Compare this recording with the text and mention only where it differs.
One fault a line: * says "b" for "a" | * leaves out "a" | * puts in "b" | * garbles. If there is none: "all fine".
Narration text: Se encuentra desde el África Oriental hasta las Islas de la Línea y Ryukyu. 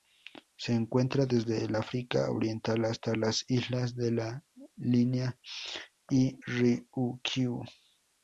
all fine